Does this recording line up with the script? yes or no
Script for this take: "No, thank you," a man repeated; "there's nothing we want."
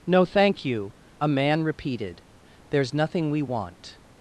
yes